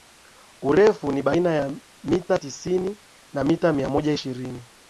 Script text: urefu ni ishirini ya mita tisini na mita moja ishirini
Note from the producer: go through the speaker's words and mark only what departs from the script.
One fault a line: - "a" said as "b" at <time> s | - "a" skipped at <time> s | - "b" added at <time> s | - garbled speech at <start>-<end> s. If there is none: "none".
- "ishirini" said as "baina" at 1.2 s
- "mia" added at 3.7 s